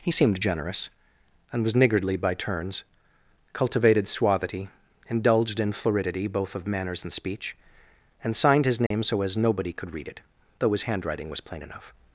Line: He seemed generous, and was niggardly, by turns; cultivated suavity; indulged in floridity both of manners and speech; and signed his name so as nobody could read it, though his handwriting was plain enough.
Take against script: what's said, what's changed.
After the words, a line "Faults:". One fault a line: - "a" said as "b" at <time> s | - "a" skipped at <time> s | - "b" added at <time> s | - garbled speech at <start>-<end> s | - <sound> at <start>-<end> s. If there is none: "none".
He seemed generous, and was niggardly, by turns; cultivated suavity; indulged in floridity both of manners and speech; and signed his name so as nobody could read it, though his handwriting was plain enough.
Faults:
- dropout at 8.9-8.9 s